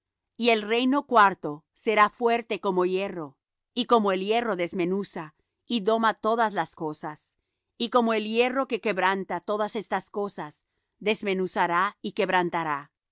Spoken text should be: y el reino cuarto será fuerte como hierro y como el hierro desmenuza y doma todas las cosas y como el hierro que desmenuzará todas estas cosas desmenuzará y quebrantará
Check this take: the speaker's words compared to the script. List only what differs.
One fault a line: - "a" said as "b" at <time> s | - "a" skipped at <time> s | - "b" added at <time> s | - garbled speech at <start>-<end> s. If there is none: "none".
- "desmenuzará" said as "quebranta" at 8.8 s